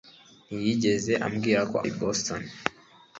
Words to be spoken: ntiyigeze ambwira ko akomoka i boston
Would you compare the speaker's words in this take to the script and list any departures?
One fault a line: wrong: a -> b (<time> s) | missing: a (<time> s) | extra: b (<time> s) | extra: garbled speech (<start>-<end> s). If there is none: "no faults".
missing: akomoka (1.8 s)